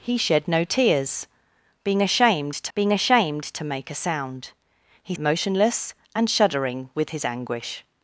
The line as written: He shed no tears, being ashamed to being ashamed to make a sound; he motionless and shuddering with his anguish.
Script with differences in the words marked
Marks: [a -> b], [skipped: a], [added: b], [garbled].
He shed no tears, being ashamed to being ashamed to make a sound; he motionless and shuddering with his anguish.